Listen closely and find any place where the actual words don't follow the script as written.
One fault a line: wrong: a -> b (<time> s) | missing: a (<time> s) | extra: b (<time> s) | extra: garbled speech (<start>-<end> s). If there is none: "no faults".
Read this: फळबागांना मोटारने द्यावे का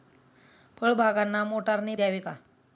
no faults